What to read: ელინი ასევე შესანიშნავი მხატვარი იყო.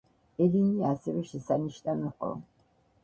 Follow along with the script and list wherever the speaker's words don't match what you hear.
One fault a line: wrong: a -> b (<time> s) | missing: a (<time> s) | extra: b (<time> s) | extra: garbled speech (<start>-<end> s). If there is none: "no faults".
missing: მხატვარი (2.1 s)